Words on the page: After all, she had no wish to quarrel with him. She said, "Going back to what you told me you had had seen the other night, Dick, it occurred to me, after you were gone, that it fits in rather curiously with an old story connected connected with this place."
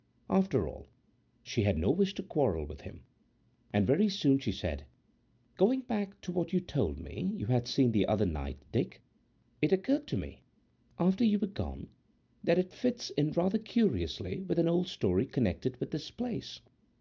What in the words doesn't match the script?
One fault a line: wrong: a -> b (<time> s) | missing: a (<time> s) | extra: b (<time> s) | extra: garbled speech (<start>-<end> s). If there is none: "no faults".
extra: And very soon (3.7 s)
missing: had (7.7 s)
missing: connected (15.8 s)